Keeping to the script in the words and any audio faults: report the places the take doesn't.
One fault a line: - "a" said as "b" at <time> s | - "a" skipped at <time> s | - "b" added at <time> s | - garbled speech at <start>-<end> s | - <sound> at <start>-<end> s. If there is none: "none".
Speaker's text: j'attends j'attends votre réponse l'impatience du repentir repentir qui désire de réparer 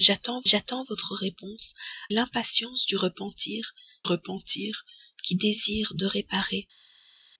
none